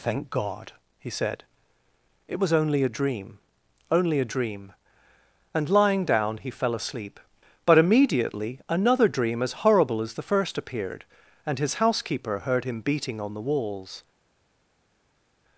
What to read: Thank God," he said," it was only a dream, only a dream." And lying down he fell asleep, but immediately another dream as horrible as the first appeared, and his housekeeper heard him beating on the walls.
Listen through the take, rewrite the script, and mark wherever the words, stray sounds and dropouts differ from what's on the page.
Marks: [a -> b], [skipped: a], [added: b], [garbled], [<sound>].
Thank God," he said," it was only a dream, only a dream." And lying down he fell asleep, but immediately another dream as horrible as the first appeared, and his housekeeper heard him beating on the walls.